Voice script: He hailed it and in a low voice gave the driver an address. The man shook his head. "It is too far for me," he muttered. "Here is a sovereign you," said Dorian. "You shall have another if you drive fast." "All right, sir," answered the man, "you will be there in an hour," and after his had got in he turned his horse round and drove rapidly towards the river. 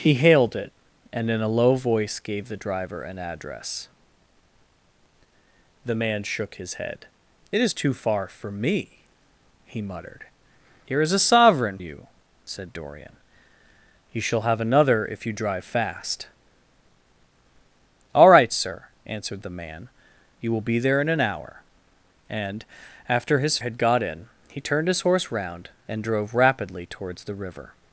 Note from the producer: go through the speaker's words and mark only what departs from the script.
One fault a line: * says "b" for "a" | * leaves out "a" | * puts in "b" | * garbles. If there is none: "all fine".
all fine